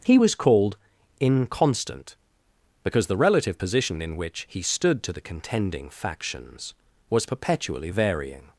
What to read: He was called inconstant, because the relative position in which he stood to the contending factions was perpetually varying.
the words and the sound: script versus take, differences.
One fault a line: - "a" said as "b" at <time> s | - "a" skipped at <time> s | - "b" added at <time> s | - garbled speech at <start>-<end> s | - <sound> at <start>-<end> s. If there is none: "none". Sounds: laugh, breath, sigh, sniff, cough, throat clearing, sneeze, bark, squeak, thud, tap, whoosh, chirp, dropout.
none